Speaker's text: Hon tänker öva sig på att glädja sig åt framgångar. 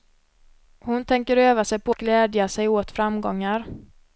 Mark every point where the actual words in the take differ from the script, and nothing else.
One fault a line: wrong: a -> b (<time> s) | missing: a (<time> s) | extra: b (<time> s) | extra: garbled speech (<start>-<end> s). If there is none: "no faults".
missing: att (2.0 s)